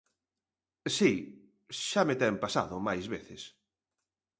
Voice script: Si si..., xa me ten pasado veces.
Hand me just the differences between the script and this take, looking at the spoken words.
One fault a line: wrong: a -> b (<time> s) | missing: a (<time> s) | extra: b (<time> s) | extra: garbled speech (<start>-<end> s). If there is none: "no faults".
missing: si (1.1 s)
extra: máis (2.9 s)